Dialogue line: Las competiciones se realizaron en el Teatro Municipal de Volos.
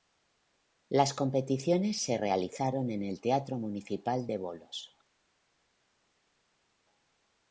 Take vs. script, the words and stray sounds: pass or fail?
pass